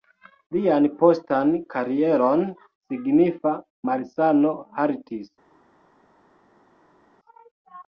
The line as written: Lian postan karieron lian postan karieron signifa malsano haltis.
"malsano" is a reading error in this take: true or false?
false